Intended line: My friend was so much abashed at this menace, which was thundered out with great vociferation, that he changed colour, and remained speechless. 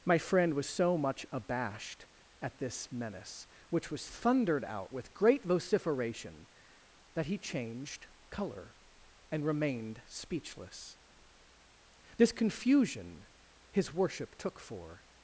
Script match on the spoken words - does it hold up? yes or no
no